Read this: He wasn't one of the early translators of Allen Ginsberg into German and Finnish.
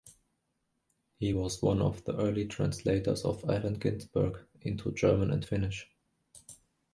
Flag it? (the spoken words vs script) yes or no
yes